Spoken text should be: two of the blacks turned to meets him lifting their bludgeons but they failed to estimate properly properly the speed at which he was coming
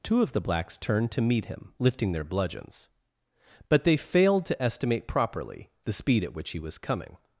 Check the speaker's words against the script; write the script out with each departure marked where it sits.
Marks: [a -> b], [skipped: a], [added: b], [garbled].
two of the blacks turned to [meets -> meet] him lifting their bludgeons but they failed to estimate properly [skipped: properly] the speed at which he was coming